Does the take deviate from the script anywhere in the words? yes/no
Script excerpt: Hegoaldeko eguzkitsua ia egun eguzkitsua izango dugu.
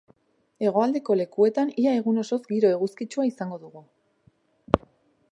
yes